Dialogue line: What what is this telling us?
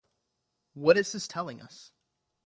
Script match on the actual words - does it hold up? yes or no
no